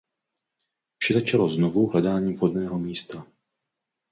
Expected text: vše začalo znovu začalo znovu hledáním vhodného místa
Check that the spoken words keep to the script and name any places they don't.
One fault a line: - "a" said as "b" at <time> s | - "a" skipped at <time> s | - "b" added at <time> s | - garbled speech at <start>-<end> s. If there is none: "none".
- "začalo znovu" skipped at 1.9 s